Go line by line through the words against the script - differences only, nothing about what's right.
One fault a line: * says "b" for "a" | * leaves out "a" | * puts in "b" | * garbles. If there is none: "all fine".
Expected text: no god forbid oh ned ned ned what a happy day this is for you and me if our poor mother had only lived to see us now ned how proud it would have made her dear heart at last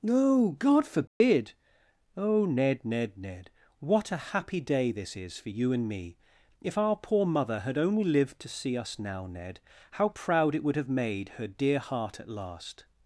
all fine